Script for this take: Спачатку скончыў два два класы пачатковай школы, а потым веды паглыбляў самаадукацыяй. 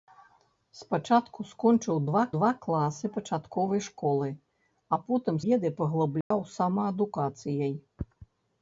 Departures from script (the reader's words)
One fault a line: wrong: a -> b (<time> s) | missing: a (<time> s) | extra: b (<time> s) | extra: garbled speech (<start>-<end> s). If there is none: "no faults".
no faults